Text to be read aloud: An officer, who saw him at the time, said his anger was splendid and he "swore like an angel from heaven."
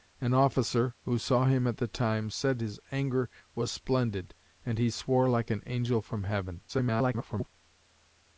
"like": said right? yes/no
yes